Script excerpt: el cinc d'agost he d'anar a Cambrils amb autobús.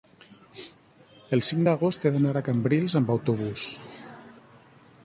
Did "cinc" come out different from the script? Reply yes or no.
no